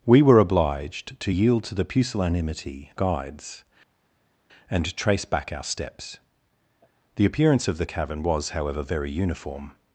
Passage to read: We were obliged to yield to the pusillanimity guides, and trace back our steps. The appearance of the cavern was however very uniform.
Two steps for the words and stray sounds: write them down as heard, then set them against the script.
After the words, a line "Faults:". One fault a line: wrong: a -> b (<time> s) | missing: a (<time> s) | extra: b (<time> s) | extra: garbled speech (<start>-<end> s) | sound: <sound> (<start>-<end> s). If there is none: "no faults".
We were obliged to yield to the pusillanimity guides, and trace back our steps. The appearance of the cavern was however very uniform.
Faults:
no faults